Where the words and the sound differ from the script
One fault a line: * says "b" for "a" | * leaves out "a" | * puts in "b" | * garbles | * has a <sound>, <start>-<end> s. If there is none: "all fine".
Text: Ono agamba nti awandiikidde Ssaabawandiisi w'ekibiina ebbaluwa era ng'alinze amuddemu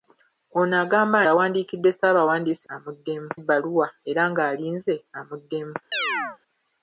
* leaves out "nti"
* says "amuddemu" for "w'ekibiina"
* has a chirp, 5.9-6.4 s